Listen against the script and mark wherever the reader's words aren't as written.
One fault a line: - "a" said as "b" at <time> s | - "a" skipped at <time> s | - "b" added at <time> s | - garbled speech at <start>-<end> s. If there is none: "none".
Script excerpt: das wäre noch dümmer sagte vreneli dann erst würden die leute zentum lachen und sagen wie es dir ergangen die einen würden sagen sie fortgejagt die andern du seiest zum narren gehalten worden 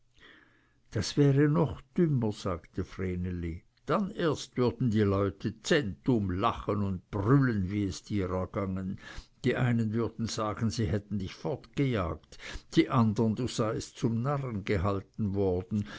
- "sagen" said as "brüllen" at 7.1 s
- "hätten dich" added at 10.9 s